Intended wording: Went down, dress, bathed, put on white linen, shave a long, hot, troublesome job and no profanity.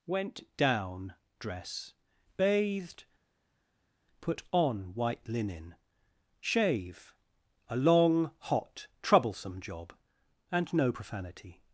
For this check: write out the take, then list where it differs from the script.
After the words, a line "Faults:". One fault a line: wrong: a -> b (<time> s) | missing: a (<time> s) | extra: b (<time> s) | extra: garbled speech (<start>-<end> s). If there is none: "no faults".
Went down, dress, bathed, put on white linen, shave a long, hot, troublesome job and no profanity.
Faults:
no faults